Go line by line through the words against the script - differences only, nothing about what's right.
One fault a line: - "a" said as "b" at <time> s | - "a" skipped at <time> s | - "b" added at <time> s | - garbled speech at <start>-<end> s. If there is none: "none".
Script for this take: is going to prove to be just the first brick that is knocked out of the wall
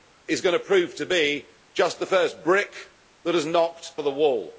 - "out" skipped at 3.9 s